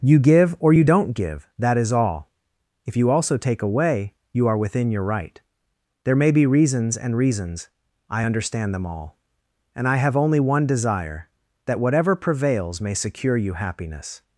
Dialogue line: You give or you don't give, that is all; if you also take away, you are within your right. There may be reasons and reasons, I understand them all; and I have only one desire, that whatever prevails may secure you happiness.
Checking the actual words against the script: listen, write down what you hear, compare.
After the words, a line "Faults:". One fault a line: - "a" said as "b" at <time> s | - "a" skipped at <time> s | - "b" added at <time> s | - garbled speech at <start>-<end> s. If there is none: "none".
You give or you don't give, that is all; if you also take away, you are within your right. There may be reasons and reasons, I understand them all; and I have only one desire, that whatever prevails may secure you happiness.
Faults:
none